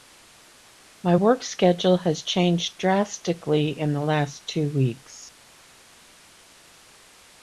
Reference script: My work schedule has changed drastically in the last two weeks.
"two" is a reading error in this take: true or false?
false